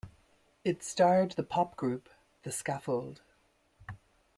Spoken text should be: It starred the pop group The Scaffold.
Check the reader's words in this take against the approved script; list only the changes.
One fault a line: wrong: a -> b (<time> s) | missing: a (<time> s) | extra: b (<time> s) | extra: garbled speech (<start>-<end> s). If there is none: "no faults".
no faults